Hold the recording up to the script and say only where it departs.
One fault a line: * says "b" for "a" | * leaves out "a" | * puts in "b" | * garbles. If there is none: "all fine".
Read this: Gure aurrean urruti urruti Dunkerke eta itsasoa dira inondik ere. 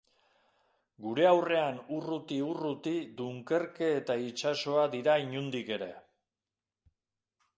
all fine